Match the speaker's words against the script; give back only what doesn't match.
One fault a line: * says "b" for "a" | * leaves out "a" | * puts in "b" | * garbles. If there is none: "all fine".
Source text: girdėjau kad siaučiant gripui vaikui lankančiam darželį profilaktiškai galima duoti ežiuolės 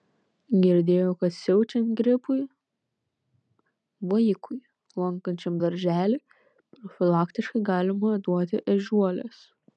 all fine